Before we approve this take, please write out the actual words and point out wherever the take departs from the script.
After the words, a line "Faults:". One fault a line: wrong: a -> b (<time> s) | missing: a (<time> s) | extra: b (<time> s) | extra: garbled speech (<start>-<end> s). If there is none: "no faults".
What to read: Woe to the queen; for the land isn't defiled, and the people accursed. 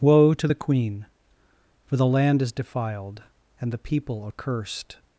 Woe to the queen; for the land is defiled, and the people accursed.
Faults:
wrong: isn't -> is (2.4 s)